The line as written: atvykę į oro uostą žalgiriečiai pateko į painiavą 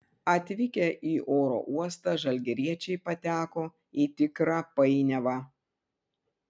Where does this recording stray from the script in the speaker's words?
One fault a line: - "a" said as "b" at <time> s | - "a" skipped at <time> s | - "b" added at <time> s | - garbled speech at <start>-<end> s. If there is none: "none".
- "tikrą" added at 4.2 s